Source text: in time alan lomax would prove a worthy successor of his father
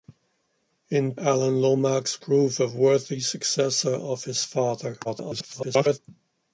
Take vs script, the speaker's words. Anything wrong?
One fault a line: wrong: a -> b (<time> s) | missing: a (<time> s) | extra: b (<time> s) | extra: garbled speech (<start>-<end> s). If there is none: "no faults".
missing: time (1.1 s)
missing: would (2.2 s)
extra: garbled speech (5.0-6.0 s)